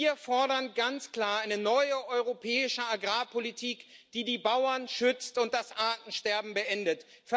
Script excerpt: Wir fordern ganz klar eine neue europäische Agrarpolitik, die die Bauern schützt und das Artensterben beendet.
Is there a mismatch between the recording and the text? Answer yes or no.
no